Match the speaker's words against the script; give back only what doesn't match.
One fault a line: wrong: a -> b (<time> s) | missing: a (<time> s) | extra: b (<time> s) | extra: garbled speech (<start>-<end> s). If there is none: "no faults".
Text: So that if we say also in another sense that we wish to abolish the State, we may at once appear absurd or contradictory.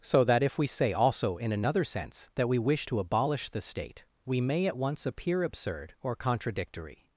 no faults